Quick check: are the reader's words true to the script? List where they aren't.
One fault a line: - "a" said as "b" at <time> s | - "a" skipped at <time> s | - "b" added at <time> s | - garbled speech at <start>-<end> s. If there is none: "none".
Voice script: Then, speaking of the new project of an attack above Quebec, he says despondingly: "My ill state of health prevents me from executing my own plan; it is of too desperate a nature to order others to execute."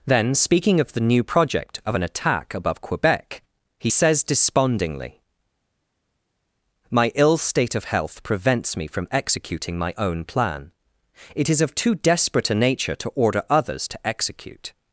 none